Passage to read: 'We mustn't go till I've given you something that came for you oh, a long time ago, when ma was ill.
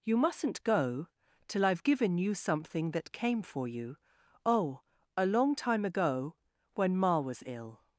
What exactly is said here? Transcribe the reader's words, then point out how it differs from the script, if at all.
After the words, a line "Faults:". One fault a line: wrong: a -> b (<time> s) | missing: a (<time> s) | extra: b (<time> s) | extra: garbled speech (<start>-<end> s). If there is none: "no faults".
'You mustn't go till I've given you something that came for you oh, a long time ago, when ma was ill.
Faults:
wrong: We -> You (0.0 s)